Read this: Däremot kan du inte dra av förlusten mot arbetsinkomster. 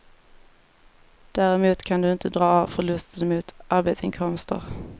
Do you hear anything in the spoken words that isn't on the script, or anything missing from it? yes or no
no